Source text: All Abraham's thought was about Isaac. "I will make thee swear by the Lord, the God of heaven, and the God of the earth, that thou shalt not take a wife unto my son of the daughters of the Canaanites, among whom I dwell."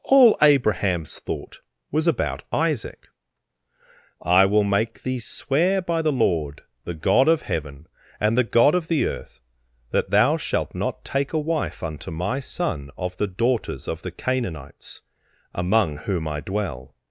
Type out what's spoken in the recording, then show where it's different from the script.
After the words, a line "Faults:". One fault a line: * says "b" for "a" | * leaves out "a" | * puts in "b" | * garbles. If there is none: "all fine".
All Abraham's thought was about Isaac. "I will make thee swear by the Lord, the God of heaven, and the God of the earth, that thou shalt not take a wife unto my son of the daughters of the Canaanites, among whom I dwell."
Faults:
all fine